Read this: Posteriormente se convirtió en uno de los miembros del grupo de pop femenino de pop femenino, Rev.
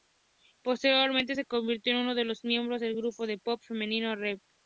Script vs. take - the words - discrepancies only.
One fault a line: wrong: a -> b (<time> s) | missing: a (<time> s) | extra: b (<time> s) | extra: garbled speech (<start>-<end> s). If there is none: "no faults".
missing: de pop femenino (4.2 s)